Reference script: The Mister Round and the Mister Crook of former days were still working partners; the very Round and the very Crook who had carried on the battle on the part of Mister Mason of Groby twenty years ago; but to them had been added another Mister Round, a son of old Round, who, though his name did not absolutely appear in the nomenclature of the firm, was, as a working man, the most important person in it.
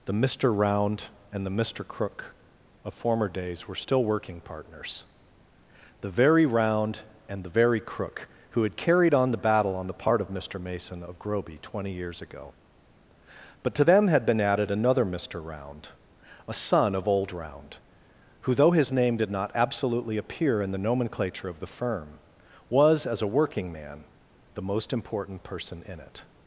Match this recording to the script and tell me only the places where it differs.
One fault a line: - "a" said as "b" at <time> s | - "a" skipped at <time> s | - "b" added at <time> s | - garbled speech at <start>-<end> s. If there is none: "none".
none